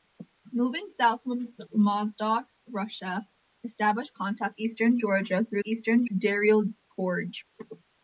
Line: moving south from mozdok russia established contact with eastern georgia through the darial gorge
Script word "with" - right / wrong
wrong